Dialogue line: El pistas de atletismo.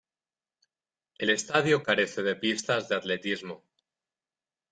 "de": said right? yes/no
yes